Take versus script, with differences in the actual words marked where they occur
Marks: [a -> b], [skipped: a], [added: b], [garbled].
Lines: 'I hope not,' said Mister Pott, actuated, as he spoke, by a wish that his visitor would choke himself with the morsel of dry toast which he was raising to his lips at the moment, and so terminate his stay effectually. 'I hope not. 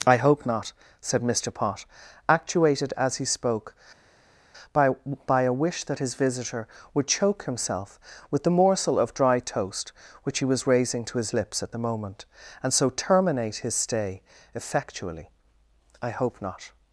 'I hope not,' said Mister Pott, actuated, as he spoke, by [added: by] a wish that his visitor would choke himself with the morsel of dry toast which he was raising to his lips at the moment, and so terminate his stay effectually. 'I hope not.